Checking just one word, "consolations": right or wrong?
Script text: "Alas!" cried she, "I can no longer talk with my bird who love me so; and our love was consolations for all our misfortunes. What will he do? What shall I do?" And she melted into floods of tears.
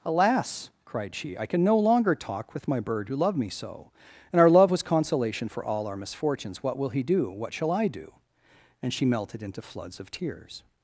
wrong